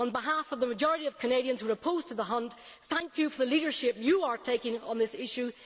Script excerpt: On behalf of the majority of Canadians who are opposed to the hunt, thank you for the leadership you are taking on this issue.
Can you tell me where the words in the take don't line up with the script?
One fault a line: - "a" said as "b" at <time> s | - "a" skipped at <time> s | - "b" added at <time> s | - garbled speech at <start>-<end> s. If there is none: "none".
none